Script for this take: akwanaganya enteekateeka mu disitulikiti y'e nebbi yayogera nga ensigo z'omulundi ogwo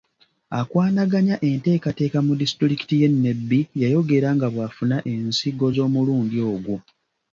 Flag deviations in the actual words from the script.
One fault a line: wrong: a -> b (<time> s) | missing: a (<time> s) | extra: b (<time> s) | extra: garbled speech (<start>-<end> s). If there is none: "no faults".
extra: bw'afuna (4.5 s)